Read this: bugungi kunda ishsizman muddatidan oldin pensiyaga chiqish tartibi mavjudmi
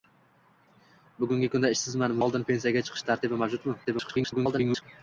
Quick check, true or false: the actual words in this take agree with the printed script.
false